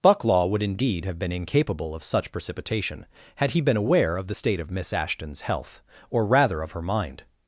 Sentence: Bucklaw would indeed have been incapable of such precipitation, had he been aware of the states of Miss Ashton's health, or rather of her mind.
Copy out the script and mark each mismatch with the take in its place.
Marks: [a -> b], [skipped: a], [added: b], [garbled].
Bucklaw would indeed have been incapable of such precipitation, had he been aware of the [states -> state] of Miss Ashton's health, or rather of her mind.